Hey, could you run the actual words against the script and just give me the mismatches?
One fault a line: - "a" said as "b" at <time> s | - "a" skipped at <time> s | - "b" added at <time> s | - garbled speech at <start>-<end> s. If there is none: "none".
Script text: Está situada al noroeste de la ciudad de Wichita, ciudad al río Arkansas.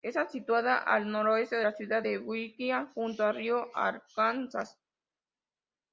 - "ciudad" said as "junto" at 2.9 s